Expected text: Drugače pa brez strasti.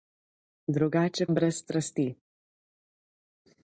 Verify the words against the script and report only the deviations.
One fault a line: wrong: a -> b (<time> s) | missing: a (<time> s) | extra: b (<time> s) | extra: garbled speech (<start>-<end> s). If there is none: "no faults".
missing: pa (1.3 s)